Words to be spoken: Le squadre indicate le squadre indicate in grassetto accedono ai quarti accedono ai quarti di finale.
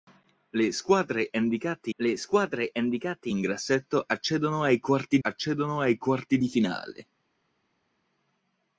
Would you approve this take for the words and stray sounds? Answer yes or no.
yes